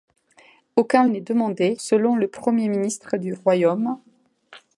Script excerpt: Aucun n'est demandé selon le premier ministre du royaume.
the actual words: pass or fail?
pass